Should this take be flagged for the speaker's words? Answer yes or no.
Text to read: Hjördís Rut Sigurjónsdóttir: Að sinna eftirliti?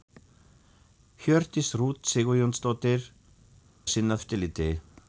no